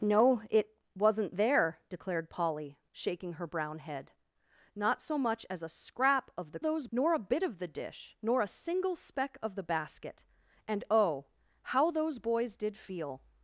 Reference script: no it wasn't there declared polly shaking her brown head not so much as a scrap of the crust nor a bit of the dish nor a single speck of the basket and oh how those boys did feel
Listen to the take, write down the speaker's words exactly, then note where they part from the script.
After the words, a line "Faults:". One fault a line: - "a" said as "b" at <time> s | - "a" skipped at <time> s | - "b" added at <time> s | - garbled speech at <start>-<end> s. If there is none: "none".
no it wasn't there declared polly shaking her brown head not so much as a scrap of the those nor a bit of the dish nor a single speck of the basket and oh how those boys did feel
Faults:
- "crust" said as "those" at 6.6 s